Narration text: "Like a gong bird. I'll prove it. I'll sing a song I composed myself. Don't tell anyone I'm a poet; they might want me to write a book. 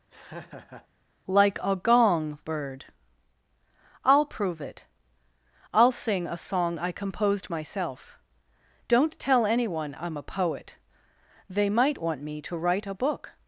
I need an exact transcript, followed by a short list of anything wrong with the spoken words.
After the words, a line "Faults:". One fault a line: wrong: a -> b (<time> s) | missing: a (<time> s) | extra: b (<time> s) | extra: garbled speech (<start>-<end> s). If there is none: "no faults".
"Like a gong bird. I'll prove it. I'll sing a song I composed myself. Don't tell anyone I'm a poet; they might want me to write a book.
Faults:
no faults